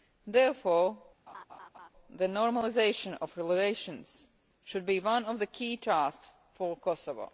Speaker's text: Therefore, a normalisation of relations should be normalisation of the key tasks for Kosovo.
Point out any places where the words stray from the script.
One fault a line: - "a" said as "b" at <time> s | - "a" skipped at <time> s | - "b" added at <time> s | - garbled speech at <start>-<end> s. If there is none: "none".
- "a" said as "the" at 2.1 s
- "normalisation" said as "one" at 5.0 s